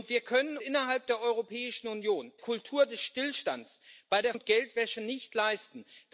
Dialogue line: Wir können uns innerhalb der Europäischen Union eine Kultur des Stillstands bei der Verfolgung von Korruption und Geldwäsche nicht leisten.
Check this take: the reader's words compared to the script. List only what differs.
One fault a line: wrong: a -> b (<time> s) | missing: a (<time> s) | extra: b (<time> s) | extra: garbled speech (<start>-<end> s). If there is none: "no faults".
missing: uns (0.6 s)
missing: eine (2.3 s)
missing: Verfolgung von Korruption (4.3 s)